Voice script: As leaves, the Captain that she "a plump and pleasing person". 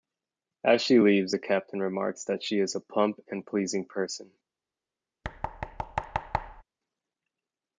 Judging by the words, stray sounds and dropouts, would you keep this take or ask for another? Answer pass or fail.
fail